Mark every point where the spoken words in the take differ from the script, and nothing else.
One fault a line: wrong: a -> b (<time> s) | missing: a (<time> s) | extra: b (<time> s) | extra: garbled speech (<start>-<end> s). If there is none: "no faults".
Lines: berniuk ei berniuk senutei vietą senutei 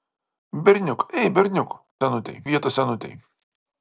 no faults